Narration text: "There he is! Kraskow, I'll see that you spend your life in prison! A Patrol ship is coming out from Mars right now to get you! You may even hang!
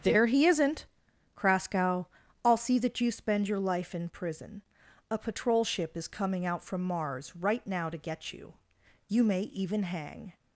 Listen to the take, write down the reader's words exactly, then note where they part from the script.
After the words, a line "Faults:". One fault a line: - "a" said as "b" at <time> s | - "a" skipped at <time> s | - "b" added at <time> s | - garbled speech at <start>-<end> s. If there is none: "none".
"There he isn't! Kraskow, I'll see that you spend your life in prison! A Patrol ship is coming out from Mars right now to get you! You may even hang!
Faults:
- "is" said as "isn't" at 0.5 s